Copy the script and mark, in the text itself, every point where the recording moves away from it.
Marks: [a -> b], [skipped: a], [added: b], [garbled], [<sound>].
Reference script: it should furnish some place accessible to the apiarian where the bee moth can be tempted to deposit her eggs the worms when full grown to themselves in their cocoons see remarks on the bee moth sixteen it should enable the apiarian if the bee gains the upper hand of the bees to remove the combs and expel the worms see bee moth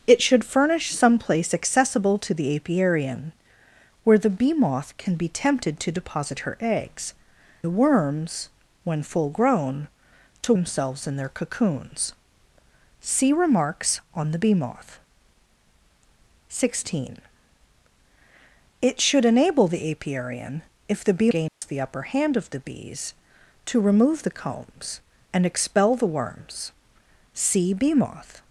it should furnish some place accessible to the apiarian where the bee moth can be tempted to deposit her eggs the worms when full grown to themselves in their cocoons see remarks on the bee moth sixteen it should enable the apiarian if the bee gains [dropout] the upper hand of the bees to remove the combs and expel the worms see bee moth